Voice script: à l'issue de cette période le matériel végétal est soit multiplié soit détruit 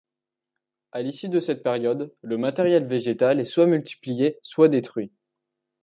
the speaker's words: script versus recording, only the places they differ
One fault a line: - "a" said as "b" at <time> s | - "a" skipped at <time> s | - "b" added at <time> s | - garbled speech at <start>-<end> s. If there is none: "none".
none